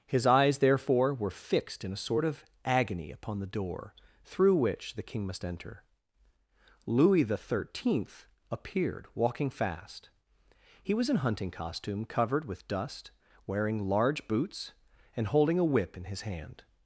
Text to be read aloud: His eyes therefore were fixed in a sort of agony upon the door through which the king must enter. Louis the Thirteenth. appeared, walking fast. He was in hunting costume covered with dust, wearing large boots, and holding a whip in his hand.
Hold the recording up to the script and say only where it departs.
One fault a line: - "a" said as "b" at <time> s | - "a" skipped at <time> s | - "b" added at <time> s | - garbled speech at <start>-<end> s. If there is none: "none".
none